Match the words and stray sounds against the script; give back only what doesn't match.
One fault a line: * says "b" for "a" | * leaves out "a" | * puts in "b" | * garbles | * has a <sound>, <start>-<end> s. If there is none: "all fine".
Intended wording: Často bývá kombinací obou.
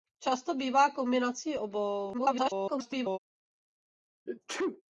* garbles
* has a sneeze, 4.3-4.8 s